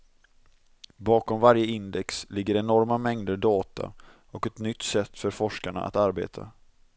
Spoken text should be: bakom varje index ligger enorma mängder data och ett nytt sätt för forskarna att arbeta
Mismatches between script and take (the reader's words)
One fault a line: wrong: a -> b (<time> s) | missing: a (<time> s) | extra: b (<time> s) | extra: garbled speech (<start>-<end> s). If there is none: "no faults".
no faults